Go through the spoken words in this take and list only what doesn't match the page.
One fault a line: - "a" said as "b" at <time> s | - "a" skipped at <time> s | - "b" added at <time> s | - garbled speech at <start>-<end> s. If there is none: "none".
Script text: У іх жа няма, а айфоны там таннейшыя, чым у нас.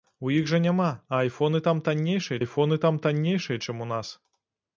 - "айфоны там таннейшыя" added at 2.4 s